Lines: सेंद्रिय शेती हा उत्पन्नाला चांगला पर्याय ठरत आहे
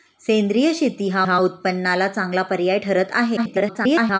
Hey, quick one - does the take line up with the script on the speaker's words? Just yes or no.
no